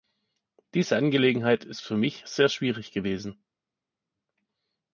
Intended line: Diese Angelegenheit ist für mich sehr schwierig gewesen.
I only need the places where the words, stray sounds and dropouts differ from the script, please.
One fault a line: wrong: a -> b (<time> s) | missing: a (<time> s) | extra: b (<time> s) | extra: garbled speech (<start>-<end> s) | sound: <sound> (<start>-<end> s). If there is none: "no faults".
no faults